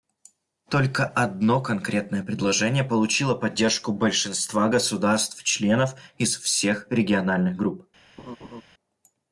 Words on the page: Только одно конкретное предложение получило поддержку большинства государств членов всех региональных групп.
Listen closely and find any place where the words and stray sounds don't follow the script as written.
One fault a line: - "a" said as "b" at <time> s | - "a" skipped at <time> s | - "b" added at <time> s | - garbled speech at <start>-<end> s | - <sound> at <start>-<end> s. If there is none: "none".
- "из" added at 6.2 s
- laugh at 8.2-8.6 s